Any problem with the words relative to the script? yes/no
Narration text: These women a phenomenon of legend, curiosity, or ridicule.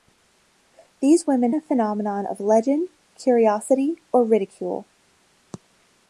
no